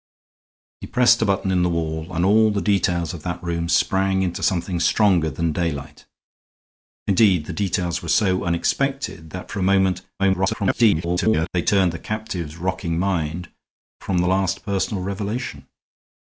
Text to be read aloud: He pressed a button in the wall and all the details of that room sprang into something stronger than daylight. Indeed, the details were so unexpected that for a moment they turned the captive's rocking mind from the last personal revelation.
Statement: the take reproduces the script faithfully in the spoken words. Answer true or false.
false